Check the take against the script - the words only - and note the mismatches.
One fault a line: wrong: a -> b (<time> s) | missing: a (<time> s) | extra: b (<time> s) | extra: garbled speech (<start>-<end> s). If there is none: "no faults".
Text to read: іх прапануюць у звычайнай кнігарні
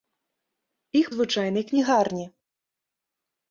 missing: прапануюць (1.1 s)